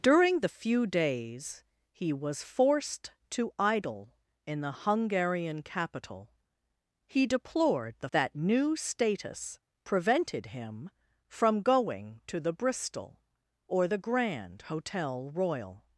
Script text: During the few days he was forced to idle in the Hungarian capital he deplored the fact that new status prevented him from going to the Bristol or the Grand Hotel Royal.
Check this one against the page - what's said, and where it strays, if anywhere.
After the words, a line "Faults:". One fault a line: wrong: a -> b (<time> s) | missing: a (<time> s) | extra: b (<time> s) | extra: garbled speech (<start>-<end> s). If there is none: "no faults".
During the few days he was forced to idle in the Hungarian capital he deplored the that new status prevented him from going to the Bristol or the Grand Hotel Royal.
Faults:
missing: fact (8.1 s)